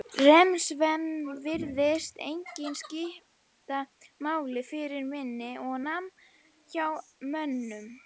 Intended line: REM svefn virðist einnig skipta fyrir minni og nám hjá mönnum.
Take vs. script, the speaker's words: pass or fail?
fail